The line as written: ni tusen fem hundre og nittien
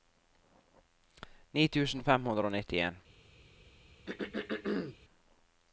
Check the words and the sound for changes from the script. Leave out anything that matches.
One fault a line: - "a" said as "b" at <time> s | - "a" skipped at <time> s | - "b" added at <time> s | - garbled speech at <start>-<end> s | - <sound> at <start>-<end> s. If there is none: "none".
- throat clearing at 4.1-5.0 s